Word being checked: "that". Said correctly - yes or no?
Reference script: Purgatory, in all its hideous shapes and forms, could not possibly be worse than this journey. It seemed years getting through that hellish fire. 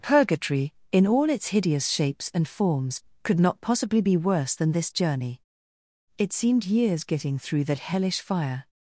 yes